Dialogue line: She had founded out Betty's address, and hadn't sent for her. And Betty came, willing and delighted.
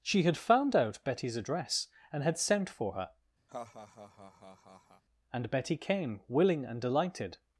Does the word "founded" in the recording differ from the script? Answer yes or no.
yes